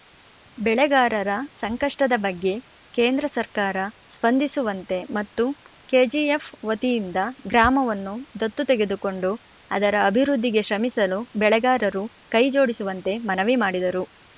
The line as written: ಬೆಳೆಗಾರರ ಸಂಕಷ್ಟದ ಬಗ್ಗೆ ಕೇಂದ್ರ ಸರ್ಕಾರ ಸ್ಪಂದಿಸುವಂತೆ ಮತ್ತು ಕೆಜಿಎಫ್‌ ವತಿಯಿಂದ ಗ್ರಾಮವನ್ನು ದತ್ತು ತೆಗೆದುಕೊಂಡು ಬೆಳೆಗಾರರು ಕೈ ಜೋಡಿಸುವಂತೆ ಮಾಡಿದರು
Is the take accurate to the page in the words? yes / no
no